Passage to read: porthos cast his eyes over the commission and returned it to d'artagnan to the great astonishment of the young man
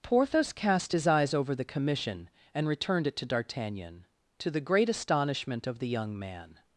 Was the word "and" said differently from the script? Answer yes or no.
no